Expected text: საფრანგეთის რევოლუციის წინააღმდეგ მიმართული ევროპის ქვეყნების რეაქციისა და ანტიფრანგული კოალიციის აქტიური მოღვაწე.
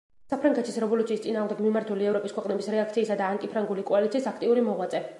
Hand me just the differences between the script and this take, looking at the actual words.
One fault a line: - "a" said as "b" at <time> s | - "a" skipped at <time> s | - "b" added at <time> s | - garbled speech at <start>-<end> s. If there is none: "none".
none